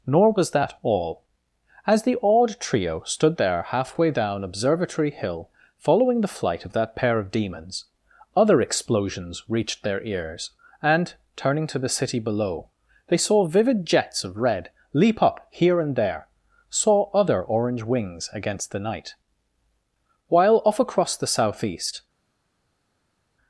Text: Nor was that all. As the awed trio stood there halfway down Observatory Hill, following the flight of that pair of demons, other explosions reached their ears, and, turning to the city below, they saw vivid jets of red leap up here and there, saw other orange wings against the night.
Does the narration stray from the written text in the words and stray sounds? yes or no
yes